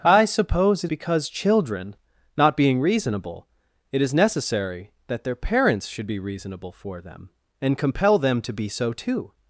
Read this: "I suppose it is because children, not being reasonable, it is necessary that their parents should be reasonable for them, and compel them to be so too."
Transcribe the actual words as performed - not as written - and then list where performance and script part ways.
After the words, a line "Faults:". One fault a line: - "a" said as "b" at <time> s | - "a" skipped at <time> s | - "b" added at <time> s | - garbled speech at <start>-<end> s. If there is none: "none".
"I suppose it because children, not being reasonable, it is necessary that their parents should be reasonable for them, and compel them to be so too."
Faults:
- "is" skipped at 0.9 s